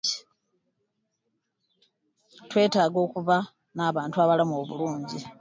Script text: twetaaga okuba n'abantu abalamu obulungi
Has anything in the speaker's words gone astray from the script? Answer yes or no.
no